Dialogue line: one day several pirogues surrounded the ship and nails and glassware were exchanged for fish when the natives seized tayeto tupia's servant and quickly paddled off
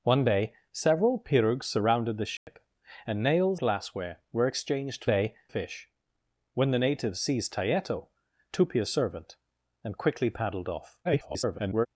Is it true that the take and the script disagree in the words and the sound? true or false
true